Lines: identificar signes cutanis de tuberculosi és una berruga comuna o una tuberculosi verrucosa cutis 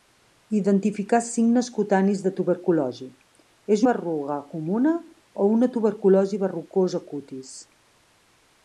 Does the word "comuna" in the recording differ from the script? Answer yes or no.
no